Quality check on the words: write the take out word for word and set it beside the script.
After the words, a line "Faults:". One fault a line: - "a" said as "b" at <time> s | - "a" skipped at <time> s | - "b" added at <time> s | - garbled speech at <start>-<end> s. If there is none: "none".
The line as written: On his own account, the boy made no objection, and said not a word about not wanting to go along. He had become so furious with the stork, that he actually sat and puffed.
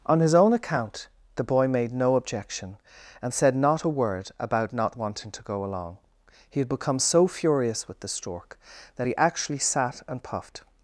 On his own account, the boy made no objection, and said not a word about not wanting to go along. He had become so furious with the stork, that he actually sat and puffed.
Faults:
none